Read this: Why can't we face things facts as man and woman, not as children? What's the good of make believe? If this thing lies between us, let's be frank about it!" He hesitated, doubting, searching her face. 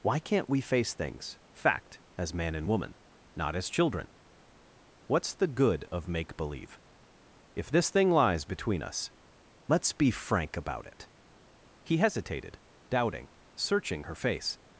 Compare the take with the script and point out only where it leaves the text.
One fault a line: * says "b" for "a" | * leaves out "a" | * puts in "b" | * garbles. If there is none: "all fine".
* says "fact" for "facts"